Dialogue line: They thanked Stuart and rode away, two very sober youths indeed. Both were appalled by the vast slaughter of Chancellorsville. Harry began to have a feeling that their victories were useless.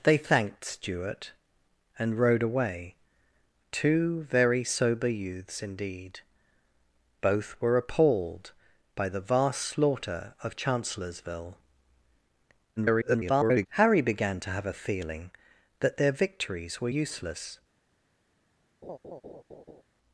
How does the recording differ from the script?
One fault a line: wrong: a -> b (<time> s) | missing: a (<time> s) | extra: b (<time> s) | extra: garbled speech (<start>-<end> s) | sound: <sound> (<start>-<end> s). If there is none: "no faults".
extra: garbled speech (12.8-13.7 s)
sound: laugh (18.8-19.8 s)